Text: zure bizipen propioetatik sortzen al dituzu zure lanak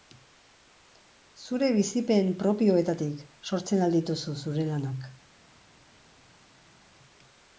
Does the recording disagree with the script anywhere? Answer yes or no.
no